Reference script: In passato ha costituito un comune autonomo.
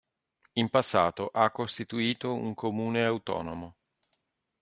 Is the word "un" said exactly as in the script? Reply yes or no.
yes